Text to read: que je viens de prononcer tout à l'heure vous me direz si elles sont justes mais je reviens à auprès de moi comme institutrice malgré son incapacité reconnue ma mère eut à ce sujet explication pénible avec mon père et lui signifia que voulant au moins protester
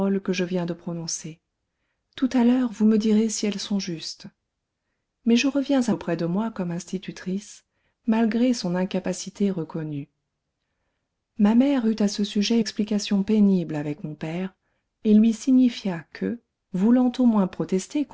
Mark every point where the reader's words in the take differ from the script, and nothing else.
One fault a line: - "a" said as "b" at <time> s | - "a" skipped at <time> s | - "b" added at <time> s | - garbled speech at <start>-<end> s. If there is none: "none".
none